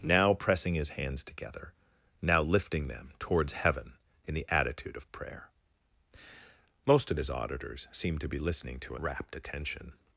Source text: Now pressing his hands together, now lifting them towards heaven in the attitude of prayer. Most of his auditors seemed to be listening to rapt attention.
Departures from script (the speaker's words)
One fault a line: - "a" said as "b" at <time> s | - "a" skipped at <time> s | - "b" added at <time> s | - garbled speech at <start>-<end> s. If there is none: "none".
none